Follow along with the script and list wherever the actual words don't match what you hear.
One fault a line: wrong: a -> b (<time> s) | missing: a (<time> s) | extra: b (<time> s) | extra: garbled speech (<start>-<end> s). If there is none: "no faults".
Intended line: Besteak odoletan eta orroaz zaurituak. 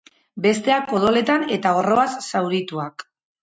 no faults